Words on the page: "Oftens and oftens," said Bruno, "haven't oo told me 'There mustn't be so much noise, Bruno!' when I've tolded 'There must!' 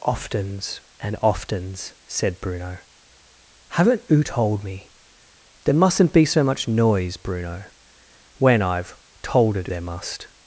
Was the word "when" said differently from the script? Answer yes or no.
no